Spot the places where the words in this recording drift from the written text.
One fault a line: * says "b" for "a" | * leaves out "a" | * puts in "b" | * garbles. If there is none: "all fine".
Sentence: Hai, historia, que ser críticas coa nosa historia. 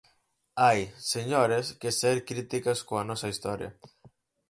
* says "señores" for "historia"